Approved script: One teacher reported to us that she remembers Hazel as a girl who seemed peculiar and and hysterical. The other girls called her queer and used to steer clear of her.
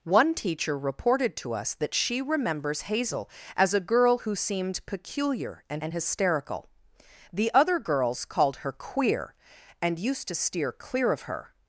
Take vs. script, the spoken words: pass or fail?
pass